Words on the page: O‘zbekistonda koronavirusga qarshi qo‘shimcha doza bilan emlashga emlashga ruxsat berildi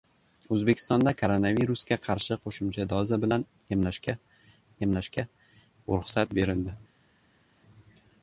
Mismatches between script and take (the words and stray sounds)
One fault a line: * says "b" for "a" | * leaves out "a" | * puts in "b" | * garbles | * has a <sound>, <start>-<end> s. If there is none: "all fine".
all fine